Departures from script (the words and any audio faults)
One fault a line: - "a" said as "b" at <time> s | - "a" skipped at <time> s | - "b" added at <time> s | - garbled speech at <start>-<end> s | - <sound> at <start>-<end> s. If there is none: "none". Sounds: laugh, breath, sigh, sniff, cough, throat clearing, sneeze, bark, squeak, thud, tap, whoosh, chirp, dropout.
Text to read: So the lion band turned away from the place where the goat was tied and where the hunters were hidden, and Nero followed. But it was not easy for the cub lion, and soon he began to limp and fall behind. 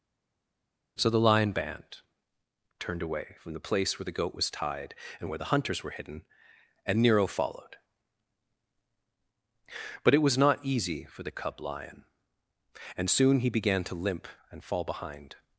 none